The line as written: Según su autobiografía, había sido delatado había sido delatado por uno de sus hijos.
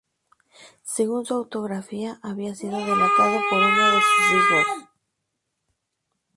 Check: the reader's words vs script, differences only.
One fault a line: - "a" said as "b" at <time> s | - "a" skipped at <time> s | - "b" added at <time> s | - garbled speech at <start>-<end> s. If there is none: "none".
- "había sido delatado" skipped at 3.4 s